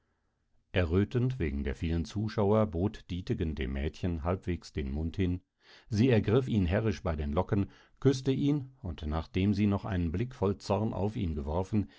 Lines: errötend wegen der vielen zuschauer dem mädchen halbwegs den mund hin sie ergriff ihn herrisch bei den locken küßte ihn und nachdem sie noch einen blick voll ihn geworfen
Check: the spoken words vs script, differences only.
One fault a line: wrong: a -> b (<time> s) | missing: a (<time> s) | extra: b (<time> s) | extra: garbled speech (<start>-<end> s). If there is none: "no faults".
extra: bot dietegen (2.6 s)
extra: zorn auf (10.6 s)